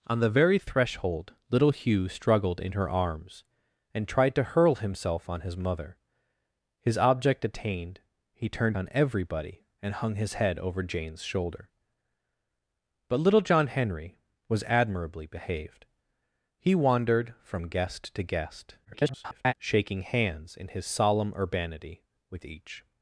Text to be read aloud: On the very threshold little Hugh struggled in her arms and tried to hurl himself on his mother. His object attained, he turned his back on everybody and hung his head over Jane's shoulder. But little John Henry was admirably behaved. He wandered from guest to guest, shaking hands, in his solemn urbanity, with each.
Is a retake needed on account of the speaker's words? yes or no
yes